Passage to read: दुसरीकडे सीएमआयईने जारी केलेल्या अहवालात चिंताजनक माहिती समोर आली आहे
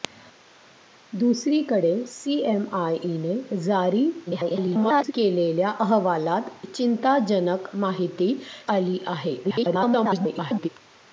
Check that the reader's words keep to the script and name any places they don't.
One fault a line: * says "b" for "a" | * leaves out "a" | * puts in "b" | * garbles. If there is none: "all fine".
* garbles
* leaves out "समोर"
* garbles